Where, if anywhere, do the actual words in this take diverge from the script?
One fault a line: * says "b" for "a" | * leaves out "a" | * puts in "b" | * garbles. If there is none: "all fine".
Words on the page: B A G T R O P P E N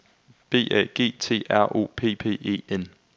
all fine